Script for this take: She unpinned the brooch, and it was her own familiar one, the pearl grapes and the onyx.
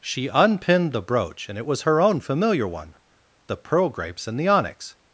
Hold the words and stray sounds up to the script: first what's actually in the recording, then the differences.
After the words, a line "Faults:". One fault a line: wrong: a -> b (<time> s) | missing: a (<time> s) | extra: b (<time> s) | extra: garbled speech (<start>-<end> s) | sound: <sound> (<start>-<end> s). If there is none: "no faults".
She unpinned the brooch, and it was her own familiar one, the pearl grapes and the onyx.
Faults:
no faults